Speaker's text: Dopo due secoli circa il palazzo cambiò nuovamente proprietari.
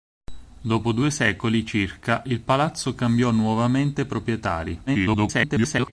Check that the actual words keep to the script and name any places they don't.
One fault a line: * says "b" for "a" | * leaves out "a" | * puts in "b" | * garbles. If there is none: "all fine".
* garbles